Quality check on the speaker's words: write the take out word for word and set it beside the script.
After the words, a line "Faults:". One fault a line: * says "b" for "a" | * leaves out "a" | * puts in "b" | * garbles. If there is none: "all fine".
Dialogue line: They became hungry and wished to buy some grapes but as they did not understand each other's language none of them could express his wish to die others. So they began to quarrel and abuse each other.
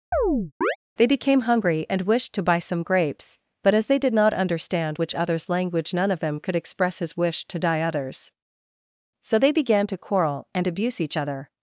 They became hungry and wished to buy some grapes but as they did not understand which other's language none of them could express his wish to die others. So they began to quarrel and abuse each other.
Faults:
* says "which" for "each"